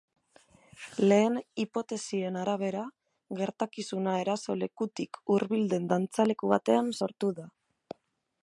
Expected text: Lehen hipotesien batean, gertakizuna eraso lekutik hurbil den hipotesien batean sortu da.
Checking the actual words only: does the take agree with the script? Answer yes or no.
no